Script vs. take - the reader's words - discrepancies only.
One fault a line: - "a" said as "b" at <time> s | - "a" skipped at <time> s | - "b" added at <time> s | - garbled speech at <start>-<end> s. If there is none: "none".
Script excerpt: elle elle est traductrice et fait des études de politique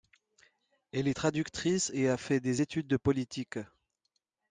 - "elle" skipped at 1.1 s
- "a" added at 2.1 s